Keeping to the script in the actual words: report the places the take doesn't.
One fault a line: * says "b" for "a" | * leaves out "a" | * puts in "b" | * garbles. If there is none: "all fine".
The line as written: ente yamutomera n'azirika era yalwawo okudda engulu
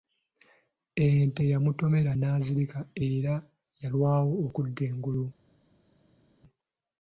all fine